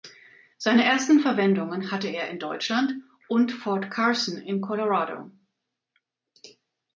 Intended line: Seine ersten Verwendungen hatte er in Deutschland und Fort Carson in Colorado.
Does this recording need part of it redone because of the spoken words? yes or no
no